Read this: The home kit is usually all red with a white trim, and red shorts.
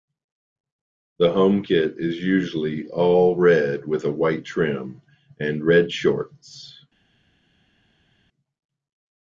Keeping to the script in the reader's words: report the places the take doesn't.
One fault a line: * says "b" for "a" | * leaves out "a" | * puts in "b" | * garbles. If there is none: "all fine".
all fine